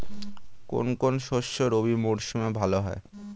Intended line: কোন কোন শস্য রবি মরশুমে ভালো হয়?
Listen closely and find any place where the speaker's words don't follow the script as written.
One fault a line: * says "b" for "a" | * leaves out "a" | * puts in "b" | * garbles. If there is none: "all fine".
all fine